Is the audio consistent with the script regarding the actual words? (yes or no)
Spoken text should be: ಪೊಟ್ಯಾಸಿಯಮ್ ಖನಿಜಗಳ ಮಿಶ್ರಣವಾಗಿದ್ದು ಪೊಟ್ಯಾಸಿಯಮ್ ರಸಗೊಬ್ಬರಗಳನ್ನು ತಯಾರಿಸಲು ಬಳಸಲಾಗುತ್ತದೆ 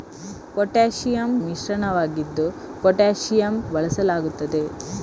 no